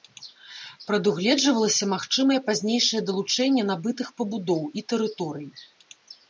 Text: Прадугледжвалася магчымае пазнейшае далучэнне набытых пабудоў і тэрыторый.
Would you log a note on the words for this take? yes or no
no